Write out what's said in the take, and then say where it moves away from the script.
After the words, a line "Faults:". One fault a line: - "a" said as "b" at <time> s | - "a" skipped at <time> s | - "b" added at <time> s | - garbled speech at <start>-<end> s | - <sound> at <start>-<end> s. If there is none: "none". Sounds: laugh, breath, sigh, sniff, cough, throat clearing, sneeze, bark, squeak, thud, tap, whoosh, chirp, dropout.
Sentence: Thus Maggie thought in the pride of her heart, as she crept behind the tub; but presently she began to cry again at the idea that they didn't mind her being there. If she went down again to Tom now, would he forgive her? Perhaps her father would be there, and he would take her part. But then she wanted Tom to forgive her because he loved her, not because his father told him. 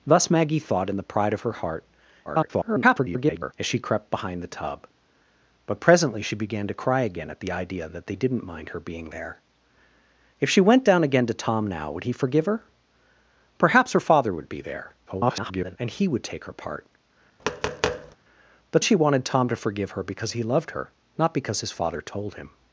Thus Maggie thought in the pride of her heart, [garbled] as she crept behind the tub; but presently she began to cry again at the idea that they didn't mind her being there. If she went down again to Tom now, would he forgive her? Perhaps her father would be there, [garbled] and he would take her part. But she wanted Tom to forgive her because he loved her, not because his father told him.
Faults:
- garbled speech at 2.2-3.5 s
- garbled speech at 15.1-15.8 s
- tap at 17.4-18.2 s
- "then" skipped at 18.8 s